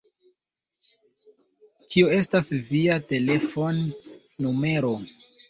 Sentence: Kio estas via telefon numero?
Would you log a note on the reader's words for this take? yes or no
no